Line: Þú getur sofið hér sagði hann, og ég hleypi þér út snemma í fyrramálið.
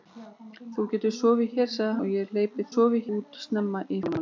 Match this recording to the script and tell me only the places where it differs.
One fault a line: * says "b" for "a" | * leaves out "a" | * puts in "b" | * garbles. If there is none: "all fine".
* leaves out "hann"
* says "sofið" for "þér"